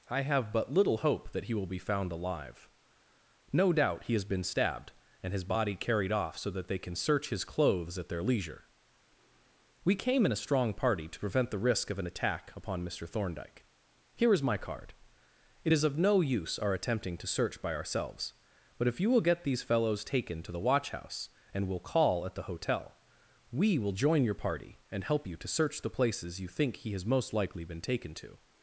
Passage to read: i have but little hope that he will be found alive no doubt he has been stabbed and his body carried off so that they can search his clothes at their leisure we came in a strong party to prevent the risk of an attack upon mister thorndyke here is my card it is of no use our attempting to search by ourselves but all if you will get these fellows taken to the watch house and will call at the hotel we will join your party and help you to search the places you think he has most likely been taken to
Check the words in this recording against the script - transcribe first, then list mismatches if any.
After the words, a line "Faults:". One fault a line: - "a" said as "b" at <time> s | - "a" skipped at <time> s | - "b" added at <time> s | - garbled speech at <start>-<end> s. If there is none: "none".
i have but little hope that he will be found alive no doubt he has been stabbed and his body carried off so that they can search his clothes at their leisure we came in a strong party to prevent the risk of an attack upon mister thorndyke here is my card it is of no use our attempting to search by ourselves but if you will get these fellows taken to the watch house and will call at the hotel we will join your party and help you to search the places you think he has most likely been taken to
Faults:
- "all" skipped at 18.9 s